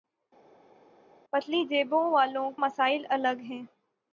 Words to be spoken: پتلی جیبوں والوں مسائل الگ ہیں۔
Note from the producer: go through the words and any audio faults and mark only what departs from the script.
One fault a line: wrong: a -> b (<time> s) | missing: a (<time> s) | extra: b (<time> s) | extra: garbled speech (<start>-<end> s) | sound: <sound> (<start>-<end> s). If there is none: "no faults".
no faults